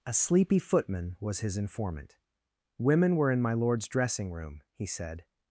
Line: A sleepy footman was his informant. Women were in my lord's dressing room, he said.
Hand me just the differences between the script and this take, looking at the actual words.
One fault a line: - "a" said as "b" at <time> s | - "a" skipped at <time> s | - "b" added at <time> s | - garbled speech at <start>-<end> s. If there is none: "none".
none